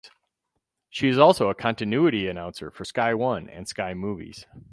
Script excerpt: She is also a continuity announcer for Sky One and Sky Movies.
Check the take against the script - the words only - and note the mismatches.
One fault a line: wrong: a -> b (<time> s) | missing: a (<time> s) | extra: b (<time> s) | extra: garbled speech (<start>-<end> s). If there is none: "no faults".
no faults